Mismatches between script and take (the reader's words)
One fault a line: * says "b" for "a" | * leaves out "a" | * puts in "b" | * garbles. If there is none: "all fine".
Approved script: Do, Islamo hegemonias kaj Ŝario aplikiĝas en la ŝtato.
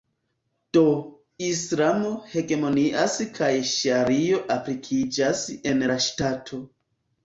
all fine